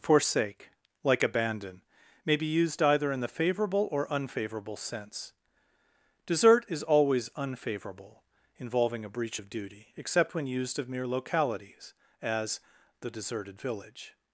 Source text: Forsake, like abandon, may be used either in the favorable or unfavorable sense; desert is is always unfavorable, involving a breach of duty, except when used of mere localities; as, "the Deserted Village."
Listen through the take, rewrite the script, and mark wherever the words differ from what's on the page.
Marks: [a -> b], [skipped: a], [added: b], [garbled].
Forsake, like abandon, may be used either in the favorable or unfavorable sense; desert is [skipped: is] always unfavorable, involving a breach of duty, except when used of mere localities; as, "the Deserted Village."